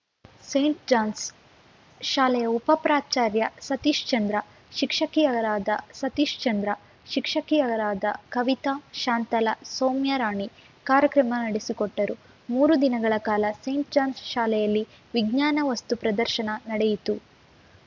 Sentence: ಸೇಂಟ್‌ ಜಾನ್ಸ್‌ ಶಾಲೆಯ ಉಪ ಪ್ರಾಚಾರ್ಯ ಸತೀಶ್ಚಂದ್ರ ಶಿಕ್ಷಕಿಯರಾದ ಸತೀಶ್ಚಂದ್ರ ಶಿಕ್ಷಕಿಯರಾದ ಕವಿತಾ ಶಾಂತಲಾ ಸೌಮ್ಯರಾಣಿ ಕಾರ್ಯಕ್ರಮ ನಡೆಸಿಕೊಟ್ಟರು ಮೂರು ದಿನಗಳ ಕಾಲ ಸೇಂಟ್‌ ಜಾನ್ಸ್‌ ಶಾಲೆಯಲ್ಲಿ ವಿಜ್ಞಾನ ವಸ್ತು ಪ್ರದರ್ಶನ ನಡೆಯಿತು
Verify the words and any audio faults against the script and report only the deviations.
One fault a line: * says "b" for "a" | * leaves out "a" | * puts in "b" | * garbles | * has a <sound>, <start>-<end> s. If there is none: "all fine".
all fine